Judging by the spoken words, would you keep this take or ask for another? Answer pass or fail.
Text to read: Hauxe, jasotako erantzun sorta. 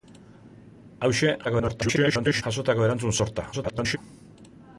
fail